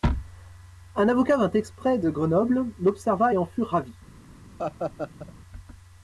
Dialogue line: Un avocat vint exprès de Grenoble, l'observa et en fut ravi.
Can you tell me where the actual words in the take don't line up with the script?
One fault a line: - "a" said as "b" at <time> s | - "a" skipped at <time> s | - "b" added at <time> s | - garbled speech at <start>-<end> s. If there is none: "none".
none